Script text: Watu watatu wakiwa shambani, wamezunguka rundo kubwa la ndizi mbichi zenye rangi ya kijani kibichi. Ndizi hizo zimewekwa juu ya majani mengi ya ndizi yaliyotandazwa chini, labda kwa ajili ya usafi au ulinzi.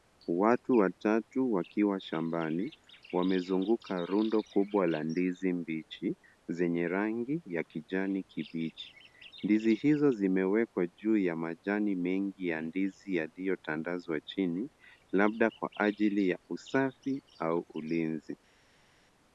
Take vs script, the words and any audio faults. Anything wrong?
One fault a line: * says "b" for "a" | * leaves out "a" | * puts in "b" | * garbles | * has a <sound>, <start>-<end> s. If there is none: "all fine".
all fine